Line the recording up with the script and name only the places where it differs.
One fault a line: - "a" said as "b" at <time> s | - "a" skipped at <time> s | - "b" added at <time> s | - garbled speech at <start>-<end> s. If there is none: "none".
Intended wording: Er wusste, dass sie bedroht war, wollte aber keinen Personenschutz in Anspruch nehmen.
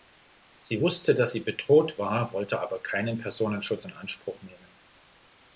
- "Er" said as "Sie" at 0.6 s